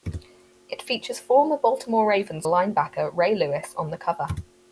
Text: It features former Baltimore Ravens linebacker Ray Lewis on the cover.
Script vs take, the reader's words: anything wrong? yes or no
no